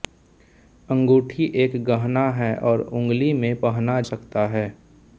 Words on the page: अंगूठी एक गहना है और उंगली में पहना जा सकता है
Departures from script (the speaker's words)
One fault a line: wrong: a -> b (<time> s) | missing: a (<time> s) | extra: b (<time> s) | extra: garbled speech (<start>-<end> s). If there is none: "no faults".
missing: जा (4.0 s)